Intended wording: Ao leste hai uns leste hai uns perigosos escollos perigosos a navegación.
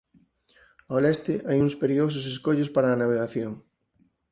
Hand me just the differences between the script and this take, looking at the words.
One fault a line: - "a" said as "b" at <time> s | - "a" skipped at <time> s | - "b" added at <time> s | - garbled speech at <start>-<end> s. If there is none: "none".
- "leste hai uns" skipped at 1.7 s
- "perigosos" said as "para" at 2.7 s